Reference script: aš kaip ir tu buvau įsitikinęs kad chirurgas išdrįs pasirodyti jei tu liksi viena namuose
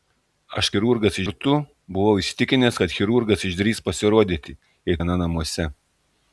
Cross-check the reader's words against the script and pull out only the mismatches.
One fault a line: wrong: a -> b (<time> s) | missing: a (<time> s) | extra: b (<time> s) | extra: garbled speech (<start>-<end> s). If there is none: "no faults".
wrong: kaip -> chirurgas (0.7 s)
missing: tu liksi (5.0 s)